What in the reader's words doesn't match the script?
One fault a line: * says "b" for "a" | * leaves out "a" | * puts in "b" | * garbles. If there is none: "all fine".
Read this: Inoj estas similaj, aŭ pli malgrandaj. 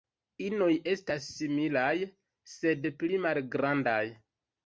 * says "sed" for "aŭ"